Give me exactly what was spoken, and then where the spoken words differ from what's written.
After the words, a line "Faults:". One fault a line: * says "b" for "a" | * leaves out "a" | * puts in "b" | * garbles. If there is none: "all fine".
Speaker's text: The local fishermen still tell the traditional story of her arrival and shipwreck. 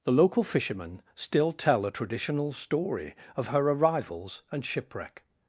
The local fishermen still tell a traditional story of her arrivals and shipwreck.
Faults:
* says "a" for "the"
* says "arrivals" for "arrival"